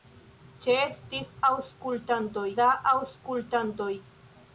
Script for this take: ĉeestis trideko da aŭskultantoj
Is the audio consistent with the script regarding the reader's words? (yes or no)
no